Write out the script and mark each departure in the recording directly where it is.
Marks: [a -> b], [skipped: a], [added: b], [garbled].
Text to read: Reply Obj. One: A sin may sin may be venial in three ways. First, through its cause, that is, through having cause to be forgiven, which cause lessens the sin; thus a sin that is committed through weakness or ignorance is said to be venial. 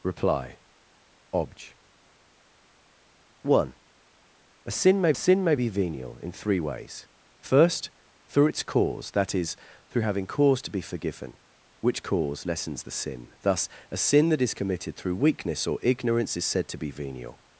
Reply Obj. One: A sin may sin may be venial in three ways. First, through its cause, that is, through having cause to be forgiven, which cause lessens the sin; thus a sin that is committed through weakness or ignorance is said to be venial.